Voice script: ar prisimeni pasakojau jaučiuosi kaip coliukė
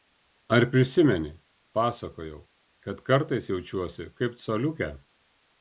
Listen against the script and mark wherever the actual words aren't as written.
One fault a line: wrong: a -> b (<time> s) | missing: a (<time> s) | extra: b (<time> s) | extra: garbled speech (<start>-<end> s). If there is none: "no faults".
extra: kad kartais (2.9 s)